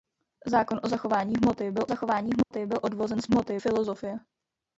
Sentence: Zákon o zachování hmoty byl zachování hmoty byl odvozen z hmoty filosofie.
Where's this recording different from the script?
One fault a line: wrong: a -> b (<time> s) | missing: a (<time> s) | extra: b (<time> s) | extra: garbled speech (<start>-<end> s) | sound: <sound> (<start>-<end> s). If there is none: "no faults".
sound: dropout (2.4-2.5 s)